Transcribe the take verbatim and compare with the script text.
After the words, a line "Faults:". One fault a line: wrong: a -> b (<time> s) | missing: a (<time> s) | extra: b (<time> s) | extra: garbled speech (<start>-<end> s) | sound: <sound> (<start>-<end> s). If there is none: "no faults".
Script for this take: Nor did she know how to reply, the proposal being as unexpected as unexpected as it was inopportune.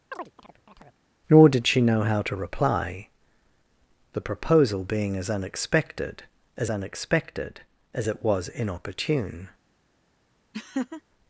Nor did she know how to reply, the proposal being as unexpected as unexpected as it was inopportune.
Faults:
sound: chirp (0.1-1.0 s)
sound: laugh (10.5-11.0 s)